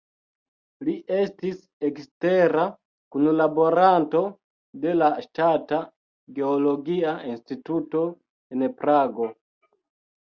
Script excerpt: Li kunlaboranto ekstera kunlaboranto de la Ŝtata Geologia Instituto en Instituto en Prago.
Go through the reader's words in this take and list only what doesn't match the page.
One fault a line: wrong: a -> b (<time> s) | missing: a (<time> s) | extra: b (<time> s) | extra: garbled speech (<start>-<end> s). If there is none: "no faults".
wrong: kunlaboranto -> estis (1.2 s)
missing: Instituto en (8.7 s)